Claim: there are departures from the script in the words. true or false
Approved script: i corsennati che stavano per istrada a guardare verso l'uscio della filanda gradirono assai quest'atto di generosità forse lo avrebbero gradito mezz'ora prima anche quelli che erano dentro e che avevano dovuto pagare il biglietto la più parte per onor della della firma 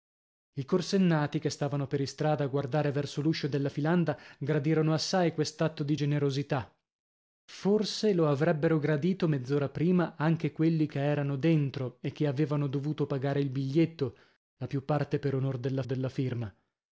false